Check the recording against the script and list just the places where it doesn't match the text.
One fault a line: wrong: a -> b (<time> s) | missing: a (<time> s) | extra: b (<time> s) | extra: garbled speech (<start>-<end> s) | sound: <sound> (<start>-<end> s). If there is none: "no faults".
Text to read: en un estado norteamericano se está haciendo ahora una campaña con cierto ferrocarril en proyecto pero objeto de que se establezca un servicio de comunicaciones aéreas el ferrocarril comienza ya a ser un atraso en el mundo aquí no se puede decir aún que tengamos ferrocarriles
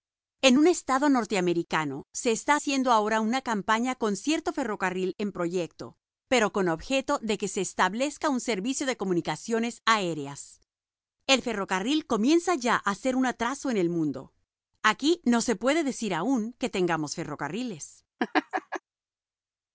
extra: con (6.5 s)
sound: laugh (18.2-18.8 s)